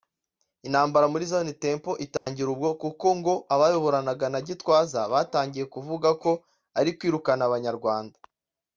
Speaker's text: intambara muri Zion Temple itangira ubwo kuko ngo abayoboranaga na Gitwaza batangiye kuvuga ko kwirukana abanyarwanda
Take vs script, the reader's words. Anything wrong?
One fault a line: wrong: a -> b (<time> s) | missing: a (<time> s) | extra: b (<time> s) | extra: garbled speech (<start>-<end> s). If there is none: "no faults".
extra: ari (6.8 s)